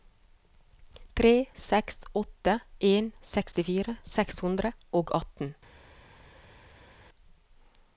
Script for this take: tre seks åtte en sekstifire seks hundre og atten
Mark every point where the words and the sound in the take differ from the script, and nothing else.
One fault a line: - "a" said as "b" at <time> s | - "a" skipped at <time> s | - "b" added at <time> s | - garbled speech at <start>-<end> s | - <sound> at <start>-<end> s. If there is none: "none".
none